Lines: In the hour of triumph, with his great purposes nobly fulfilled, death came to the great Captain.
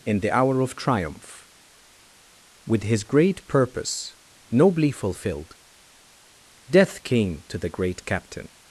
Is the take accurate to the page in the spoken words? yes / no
no